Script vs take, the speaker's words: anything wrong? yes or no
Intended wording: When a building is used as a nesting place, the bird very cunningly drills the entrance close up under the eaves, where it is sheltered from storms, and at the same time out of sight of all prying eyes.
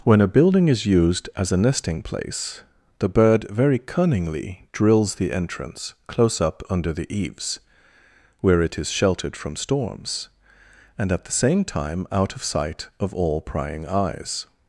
no